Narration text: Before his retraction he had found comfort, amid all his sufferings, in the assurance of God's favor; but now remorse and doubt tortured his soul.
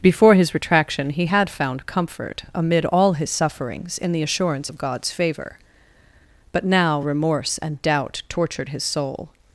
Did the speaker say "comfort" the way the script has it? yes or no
yes